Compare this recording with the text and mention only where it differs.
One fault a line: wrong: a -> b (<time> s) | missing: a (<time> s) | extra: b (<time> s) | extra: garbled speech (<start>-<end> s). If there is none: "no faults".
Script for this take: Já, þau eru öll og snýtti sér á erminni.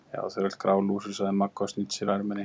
extra: grálúsug sagði Magga (0.6 s)